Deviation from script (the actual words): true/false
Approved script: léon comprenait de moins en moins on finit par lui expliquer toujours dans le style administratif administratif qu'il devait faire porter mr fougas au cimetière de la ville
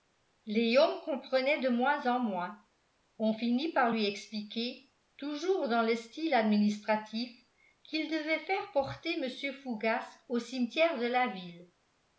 true